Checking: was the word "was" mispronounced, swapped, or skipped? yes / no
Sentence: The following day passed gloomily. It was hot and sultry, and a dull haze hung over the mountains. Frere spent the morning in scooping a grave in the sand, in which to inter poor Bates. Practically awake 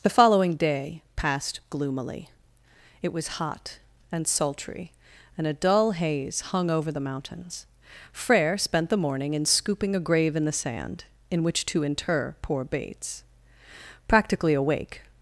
no